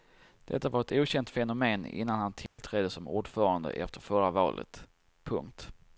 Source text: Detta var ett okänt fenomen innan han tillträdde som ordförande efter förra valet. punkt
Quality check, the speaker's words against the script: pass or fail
pass